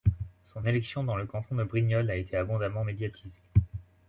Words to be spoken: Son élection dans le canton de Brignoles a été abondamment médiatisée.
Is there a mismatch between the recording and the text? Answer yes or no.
no